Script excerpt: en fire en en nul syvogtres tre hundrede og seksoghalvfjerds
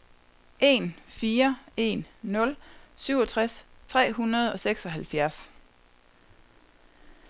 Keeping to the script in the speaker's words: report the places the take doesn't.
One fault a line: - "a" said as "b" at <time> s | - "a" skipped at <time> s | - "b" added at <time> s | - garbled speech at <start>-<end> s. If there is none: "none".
- "en" skipped at 2.0 s